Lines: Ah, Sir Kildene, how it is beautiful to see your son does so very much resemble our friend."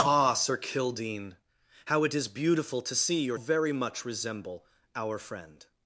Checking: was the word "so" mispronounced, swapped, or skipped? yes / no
yes